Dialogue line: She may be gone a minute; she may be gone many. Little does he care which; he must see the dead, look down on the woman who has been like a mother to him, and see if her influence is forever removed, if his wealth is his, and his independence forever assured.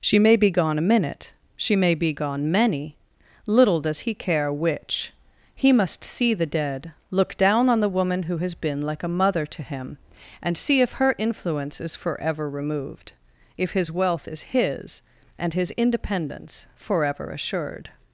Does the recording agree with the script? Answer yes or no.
yes